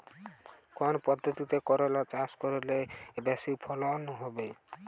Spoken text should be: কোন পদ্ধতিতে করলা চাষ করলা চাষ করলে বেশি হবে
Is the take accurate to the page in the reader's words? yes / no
no